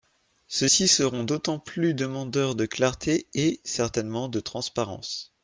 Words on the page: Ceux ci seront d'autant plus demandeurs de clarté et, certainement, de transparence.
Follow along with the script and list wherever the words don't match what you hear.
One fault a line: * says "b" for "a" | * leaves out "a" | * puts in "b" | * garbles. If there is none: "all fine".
all fine